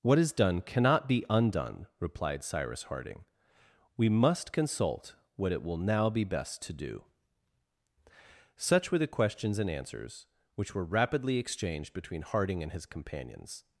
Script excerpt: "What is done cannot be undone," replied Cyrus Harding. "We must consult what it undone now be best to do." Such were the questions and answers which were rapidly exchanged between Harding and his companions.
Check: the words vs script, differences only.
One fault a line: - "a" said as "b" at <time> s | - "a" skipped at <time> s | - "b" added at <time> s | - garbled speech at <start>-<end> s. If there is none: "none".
- "undone" said as "will" at 5.6 s